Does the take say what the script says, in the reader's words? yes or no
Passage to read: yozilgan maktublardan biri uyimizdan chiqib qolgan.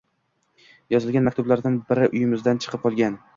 yes